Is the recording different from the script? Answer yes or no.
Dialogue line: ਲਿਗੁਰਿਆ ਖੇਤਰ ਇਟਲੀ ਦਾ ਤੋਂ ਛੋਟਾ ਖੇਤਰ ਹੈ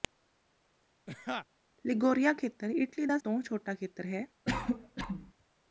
no